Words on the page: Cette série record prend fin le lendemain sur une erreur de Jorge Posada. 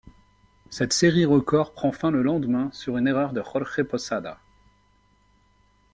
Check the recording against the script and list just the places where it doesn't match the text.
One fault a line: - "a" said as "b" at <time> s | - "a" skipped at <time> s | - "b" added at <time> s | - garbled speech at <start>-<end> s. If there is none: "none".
none